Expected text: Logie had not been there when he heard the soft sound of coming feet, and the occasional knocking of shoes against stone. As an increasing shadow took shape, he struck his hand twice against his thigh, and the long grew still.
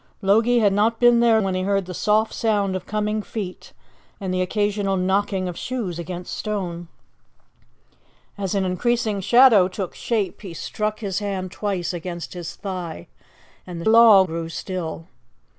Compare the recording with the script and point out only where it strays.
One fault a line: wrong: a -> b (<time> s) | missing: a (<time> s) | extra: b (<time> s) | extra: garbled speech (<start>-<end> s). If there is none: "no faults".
no faults